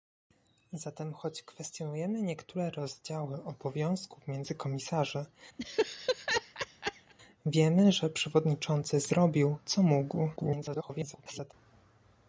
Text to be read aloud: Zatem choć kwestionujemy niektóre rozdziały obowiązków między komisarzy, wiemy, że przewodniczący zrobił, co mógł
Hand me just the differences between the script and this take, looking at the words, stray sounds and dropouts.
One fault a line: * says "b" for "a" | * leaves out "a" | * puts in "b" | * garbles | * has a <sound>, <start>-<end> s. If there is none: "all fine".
* has a laugh, 5.6-7.1 s
* garbles